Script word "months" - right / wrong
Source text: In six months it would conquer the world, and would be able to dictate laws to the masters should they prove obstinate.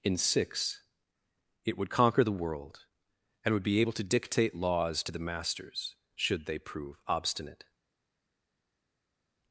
wrong